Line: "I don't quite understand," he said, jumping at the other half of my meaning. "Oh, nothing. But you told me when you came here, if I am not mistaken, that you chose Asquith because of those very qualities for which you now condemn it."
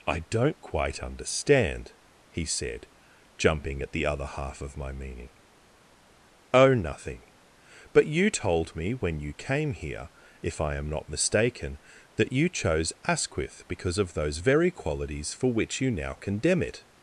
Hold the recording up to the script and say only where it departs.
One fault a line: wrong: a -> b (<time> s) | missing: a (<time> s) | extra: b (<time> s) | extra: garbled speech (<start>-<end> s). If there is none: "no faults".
no faults